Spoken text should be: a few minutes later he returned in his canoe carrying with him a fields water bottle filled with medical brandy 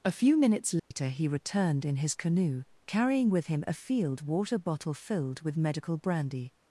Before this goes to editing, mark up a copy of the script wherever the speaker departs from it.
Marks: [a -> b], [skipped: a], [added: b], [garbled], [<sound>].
a few minutes later [dropout] he returned in his canoe carrying with him a [fields -> field] water bottle filled with medical brandy